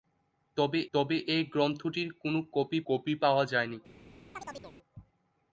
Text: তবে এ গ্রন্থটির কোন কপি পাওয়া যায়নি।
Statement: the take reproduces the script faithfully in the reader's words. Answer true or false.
false